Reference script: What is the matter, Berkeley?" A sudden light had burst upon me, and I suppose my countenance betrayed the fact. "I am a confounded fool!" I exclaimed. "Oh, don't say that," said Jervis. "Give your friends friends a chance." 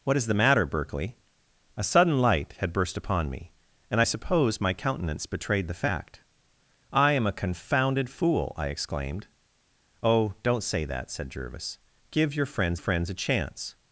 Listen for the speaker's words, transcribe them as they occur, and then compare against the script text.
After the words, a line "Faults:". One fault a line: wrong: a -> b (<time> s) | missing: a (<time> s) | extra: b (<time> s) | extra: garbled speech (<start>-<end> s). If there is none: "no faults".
What is the matter, Berkeley?" A sudden light had burst upon me, and I suppose my countenance betrayed the fact. "I am a confounded fool!" I exclaimed. "Oh, don't say that," said Jervis. "Give your friends friends a chance."
Faults:
no faults